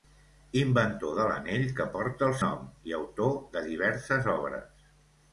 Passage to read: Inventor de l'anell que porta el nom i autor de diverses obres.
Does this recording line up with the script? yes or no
yes